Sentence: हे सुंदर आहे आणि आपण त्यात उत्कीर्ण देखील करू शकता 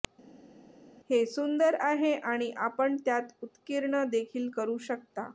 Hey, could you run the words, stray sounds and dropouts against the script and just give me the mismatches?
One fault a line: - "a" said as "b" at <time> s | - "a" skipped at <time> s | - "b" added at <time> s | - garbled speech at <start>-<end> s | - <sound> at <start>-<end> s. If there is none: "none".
none